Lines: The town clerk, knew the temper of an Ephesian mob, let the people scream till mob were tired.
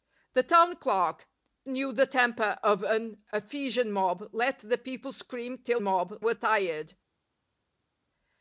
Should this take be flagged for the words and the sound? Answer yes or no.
no